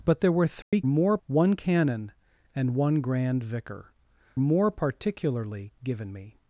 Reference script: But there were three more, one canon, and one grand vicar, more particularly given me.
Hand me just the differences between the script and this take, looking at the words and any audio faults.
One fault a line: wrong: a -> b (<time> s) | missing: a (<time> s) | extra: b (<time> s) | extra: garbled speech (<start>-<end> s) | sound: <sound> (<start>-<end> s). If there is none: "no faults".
sound: dropout (0.6-0.7 s)